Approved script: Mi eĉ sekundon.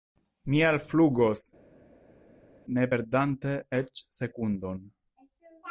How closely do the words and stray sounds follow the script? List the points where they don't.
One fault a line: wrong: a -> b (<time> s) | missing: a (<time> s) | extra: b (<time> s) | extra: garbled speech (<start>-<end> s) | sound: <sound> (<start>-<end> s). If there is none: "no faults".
extra: alflugos ne perdante (0.7 s)